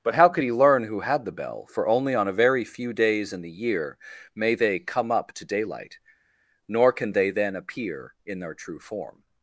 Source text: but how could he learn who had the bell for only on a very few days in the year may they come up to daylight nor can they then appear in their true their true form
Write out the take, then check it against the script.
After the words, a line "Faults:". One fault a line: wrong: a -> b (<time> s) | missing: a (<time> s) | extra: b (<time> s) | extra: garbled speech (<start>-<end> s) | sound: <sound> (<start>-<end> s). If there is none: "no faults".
but how could he learn who had the bell for only on a very few days in the year may they come up to daylight nor can they then appear in their true form
Faults:
missing: their true (8.8 s)